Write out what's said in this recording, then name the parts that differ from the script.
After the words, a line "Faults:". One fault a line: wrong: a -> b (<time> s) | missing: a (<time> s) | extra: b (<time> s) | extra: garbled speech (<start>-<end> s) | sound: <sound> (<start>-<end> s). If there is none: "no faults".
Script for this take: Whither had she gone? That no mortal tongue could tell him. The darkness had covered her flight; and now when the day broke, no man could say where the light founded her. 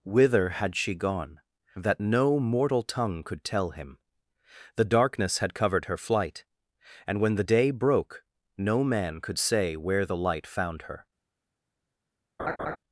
Whither had she gone? That no mortal tongue could tell him. The darkness had covered her flight; and when the day broke, no man could say where the light found her.
Faults:
missing: now (7.2 s)
wrong: founded -> found (10.5 s)
sound: laugh (12.4-12.8 s)